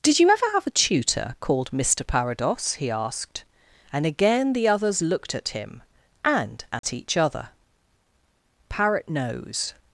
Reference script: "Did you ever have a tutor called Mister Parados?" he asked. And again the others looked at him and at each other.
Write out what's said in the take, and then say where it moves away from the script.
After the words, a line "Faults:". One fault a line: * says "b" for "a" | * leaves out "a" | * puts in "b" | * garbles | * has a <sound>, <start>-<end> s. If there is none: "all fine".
"Did you ever have a tutor called Mister Parados?" he asked. And again the others looked at him and at each other. "Parrot nose
Faults:
* has a dropout, 6.8-6.8 s
* puts in "Parrot nose"